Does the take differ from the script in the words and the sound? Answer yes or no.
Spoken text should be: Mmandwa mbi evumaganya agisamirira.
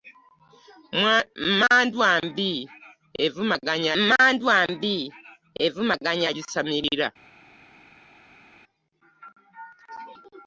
yes